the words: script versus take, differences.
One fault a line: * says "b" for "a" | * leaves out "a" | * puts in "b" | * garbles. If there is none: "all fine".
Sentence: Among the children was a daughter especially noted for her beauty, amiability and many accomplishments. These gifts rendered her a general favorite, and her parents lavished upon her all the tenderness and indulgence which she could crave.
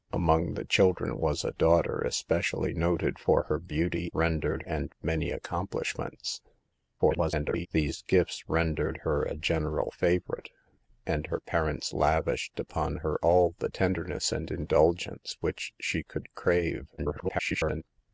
* says "rendered" for "amiability"
* garbles
* garbles